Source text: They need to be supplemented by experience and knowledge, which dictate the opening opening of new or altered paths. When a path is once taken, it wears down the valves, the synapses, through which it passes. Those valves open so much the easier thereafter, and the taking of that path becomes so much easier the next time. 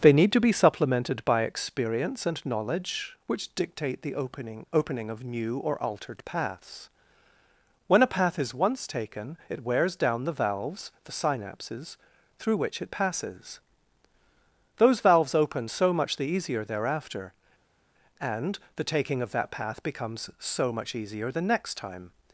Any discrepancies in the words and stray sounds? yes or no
no